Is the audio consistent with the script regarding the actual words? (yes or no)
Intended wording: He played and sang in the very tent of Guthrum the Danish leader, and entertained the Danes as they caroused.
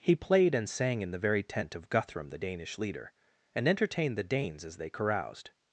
yes